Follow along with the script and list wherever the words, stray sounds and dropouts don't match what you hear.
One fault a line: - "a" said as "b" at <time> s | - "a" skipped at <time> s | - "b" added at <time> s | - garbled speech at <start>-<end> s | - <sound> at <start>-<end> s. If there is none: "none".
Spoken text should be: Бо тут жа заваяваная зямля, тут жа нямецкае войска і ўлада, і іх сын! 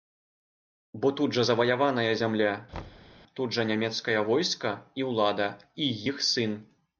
- thud at 2.7-3.1 s